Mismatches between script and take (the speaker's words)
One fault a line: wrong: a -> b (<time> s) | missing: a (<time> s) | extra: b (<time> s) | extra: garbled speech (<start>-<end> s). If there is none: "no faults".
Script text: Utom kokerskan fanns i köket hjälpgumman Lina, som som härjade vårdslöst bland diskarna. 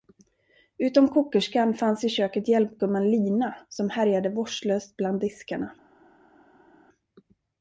missing: som (3.9 s)